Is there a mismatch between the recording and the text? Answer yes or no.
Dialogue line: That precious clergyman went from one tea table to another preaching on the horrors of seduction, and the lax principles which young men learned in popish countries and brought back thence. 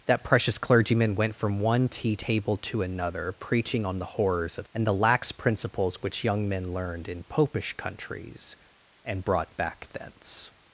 yes